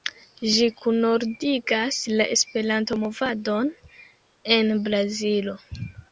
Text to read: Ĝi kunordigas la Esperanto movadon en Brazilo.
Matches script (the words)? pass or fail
pass